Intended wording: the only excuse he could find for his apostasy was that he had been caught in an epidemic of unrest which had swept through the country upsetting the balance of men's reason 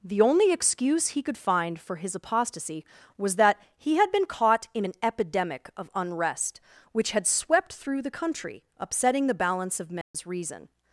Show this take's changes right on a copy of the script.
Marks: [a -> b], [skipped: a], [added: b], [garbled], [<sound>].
the only excuse he could find for his apostasy was that he had been caught in an epidemic of unrest which had swept through the country upsetting the balance of men's [dropout] reason